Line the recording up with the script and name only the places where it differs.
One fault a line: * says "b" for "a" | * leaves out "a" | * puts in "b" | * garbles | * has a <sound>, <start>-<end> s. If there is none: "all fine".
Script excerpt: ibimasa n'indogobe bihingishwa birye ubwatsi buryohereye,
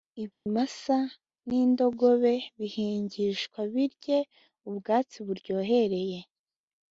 * has a dropout, 0.3-0.5 s